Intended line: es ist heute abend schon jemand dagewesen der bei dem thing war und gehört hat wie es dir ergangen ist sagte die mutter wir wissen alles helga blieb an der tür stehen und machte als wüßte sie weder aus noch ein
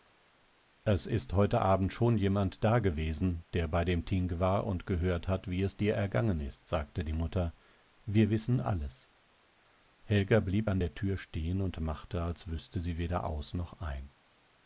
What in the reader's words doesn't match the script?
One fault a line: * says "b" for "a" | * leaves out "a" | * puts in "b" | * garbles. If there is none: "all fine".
all fine